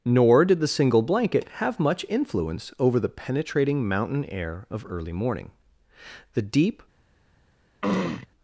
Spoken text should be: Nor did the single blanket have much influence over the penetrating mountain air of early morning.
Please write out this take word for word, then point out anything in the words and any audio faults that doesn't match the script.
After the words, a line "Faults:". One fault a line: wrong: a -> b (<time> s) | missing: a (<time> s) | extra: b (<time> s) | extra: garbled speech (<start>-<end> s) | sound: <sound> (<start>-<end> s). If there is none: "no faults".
Nor did the single blanket have much influence over the penetrating mountain air of early morning. The deep
Faults:
extra: The deep (6.3 s)
sound: throat clearing (7.8-8.3 s)